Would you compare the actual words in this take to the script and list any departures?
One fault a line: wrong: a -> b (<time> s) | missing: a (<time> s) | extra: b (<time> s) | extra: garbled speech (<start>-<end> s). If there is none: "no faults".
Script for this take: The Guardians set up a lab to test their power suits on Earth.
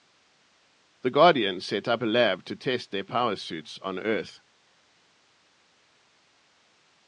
no faults